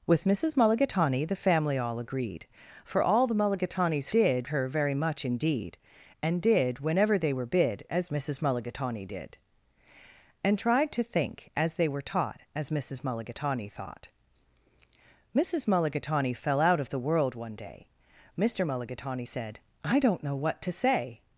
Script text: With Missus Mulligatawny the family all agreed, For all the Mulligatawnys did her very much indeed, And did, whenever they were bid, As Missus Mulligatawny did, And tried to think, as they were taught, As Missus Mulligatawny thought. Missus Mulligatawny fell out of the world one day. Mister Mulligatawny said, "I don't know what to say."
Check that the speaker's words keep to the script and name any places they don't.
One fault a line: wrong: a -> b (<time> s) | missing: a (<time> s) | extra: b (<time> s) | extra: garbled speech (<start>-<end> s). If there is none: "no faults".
no faults